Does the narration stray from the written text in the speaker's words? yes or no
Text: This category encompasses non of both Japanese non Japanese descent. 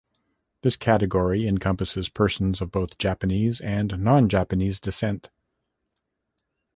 yes